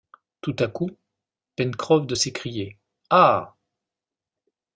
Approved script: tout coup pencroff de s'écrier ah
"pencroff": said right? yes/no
yes